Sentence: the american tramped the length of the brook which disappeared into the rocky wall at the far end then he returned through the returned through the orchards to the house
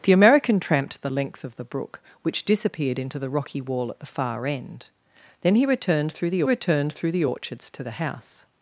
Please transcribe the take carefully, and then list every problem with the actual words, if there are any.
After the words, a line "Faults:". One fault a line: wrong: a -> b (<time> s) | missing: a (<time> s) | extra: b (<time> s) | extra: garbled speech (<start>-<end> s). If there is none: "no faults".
the american tramped the length of the brook which disappeared into the rocky wall at the far end then he returned through the returned through the orchards to the house
Faults:
no faults